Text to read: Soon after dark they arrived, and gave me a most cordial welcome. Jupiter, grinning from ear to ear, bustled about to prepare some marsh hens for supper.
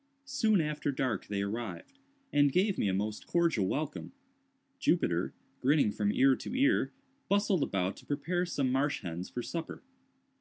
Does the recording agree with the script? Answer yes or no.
yes